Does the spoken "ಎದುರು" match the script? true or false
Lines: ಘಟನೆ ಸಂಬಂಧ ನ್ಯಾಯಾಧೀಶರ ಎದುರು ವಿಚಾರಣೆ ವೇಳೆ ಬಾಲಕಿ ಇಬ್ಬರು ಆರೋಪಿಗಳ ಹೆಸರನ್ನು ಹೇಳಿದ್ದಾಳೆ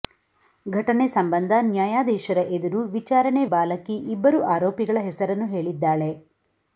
true